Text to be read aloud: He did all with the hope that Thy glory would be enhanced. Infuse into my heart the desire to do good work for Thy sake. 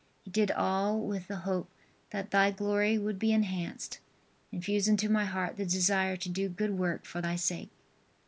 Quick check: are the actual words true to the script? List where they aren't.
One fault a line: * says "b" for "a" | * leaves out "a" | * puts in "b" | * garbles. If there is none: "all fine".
all fine